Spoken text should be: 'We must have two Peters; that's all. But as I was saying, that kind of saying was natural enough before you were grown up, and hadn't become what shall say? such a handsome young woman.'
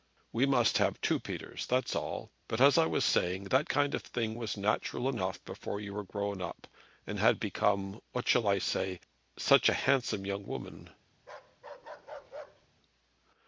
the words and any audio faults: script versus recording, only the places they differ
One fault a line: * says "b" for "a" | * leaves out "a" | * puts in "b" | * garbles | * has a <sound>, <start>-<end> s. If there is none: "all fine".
* says "thing" for "saying"
* says "had" for "hadn't"
* puts in "I"
* has a bark, 11.2-12.7 s